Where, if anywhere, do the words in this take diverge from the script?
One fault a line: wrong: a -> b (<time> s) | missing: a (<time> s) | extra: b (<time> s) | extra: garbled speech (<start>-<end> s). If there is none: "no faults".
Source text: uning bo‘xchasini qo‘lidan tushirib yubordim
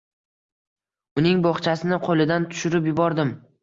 no faults